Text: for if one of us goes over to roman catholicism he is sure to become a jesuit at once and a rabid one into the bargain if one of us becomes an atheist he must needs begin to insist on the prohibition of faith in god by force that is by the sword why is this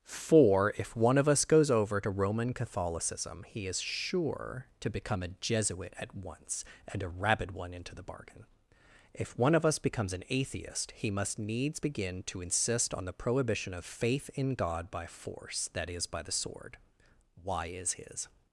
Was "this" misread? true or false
true